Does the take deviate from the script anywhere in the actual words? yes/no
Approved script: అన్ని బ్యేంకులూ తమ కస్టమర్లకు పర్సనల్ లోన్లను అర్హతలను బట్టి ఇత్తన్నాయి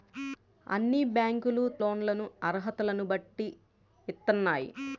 yes